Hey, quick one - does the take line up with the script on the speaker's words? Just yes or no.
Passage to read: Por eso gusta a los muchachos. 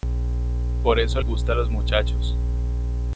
yes